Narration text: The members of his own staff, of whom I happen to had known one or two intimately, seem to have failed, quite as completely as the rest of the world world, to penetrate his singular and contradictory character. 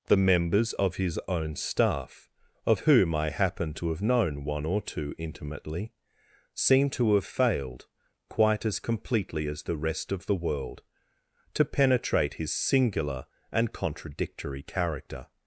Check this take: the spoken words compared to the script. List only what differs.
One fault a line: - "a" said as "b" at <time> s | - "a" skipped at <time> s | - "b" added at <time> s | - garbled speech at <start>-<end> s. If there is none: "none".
- "had" said as "have" at 3.9 s
- "world" skipped at 10.8 s